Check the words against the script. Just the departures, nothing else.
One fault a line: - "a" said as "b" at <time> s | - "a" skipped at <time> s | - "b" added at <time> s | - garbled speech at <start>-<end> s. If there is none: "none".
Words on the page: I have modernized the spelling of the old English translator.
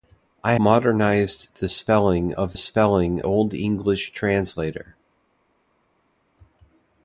- "have" skipped at 0.6 s
- "the" said as "spelling" at 2.6 s